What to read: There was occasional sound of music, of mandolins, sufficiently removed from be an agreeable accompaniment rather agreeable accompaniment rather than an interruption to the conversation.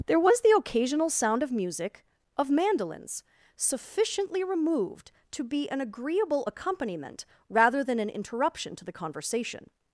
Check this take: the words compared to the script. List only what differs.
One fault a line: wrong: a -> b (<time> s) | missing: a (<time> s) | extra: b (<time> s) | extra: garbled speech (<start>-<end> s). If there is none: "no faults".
extra: the (0.4 s)
wrong: from -> to (5.3 s)
missing: agreeable accompaniment rather (7.8 s)